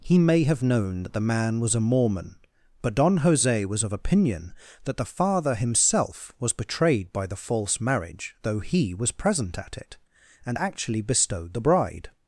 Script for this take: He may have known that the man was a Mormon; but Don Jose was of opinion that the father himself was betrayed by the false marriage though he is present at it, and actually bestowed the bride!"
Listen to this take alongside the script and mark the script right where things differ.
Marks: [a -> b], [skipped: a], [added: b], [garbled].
He may have known that the man was a Mormon; but Don Jose was of opinion that the father himself was betrayed by the false marriage though he [is -> was] present at it, and actually bestowed the bride!"